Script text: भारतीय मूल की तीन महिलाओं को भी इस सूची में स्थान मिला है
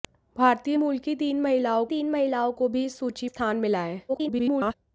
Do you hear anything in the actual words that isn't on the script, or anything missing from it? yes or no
yes